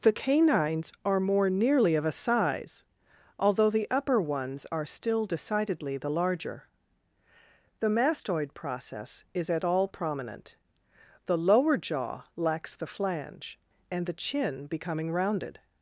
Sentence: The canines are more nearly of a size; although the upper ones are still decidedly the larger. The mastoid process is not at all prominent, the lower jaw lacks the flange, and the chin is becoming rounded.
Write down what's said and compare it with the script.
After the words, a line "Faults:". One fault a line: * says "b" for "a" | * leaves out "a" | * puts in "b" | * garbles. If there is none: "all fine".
The canines are more nearly of a size; although the upper ones are still decidedly the larger. The mastoid process is at all prominent, the lower jaw lacks the flange, and the chin becoming rounded.
Faults:
* leaves out "not"
* leaves out "is"